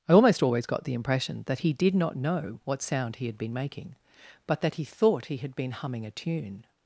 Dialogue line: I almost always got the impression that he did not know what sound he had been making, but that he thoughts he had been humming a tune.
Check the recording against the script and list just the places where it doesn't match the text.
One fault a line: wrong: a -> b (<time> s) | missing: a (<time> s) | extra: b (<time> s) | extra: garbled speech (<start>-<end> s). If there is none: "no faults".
wrong: thoughts -> thought (4.8 s)